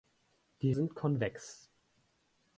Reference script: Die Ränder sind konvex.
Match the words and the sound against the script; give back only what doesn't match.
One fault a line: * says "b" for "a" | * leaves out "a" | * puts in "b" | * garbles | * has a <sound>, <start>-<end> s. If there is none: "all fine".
* leaves out "Ränder"